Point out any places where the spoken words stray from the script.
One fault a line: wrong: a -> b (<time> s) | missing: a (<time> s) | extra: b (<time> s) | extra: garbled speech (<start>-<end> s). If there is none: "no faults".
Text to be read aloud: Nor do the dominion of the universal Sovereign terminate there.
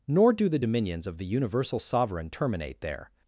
wrong: dominion -> dominions (0.6 s)